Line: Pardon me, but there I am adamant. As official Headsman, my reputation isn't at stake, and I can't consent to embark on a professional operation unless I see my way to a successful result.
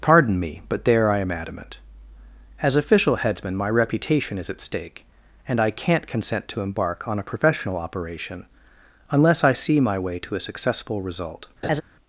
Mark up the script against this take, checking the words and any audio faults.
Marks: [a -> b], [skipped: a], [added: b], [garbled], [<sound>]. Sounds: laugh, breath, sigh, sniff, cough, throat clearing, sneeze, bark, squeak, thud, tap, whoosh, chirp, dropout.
Pardon me, but there I am adamant. As official Headsman, my reputation [isn't -> is] at stake, and I can't consent to embark on a professional operation unless I see my way to a successful result. [laugh]